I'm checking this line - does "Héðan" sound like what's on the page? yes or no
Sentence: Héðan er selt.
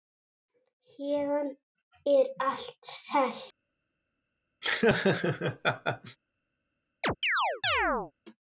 yes